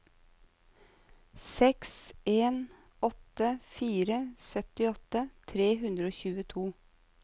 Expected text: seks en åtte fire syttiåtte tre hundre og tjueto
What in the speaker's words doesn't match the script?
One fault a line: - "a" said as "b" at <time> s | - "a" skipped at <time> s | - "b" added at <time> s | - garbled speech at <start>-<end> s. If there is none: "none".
none